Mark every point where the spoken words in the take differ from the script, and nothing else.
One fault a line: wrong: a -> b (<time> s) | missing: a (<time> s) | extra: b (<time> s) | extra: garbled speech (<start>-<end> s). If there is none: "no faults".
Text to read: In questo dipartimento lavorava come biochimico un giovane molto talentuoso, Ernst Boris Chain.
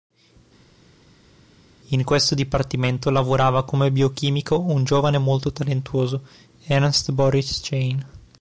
no faults